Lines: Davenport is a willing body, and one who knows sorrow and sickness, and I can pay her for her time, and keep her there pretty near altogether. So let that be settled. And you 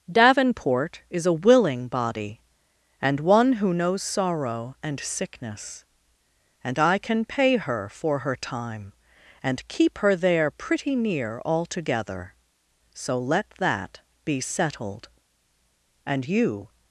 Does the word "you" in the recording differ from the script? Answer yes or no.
no